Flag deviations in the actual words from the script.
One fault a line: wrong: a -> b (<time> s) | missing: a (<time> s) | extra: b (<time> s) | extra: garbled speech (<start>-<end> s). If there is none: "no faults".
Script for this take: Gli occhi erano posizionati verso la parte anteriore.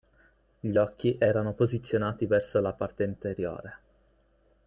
no faults